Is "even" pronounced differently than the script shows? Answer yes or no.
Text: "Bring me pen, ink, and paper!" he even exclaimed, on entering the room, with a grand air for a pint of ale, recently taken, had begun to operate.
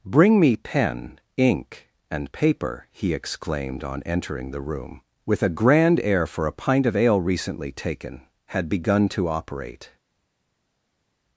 yes